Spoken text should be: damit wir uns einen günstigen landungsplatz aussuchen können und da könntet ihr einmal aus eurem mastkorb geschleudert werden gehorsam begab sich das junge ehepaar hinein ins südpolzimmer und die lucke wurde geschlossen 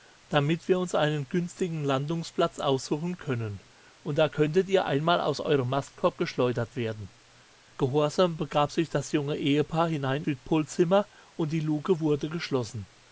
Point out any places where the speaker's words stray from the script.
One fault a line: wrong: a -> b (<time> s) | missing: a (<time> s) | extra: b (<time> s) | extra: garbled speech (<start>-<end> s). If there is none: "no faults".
missing: ins (10.2 s)